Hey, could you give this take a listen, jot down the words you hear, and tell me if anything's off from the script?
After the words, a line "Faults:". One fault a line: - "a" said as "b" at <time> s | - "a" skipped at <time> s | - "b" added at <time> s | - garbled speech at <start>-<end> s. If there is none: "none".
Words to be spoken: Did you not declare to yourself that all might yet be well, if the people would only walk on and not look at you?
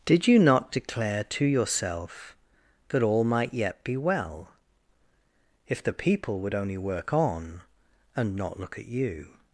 Did you not declare to yourself that all might yet be well, if the people would only work on and not look at you?
Faults:
- "walk" said as "work" at 6.8 s